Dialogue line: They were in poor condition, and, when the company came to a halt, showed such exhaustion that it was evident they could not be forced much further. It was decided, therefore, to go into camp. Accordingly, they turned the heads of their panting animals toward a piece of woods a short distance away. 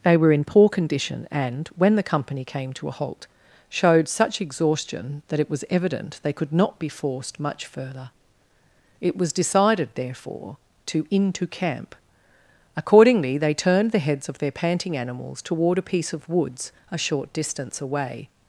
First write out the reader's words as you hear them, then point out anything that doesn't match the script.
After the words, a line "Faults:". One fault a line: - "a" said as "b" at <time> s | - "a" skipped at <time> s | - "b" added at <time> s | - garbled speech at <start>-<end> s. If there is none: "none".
They were in poor condition, and, when the company came to a halt, showed such exhaustion that it was evident they could not be forced much further. It was decided, therefore, to into camp. Accordingly, they turned the heads of their panting animals toward a piece of woods a short distance away.
Faults:
- "go" skipped at 11.1 s